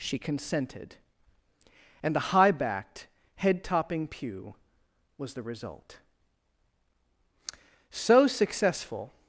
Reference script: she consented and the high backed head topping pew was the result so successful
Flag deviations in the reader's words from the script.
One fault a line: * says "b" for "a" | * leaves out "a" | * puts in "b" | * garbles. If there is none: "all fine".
all fine